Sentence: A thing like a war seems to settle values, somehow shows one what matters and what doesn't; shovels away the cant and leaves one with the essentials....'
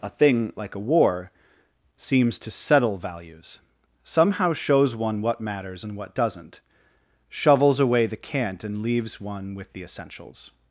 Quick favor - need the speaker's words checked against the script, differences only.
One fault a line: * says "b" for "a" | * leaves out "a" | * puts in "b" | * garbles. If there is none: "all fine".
all fine